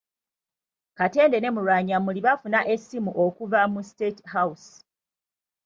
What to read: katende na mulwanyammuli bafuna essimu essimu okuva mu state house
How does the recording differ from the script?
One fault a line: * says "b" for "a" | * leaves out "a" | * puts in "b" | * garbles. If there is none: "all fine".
* says "ne" for "na"
* leaves out "essimu"